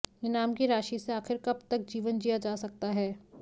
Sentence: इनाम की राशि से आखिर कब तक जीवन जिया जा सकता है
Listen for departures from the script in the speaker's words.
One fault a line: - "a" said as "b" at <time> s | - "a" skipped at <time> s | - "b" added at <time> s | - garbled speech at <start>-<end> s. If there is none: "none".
none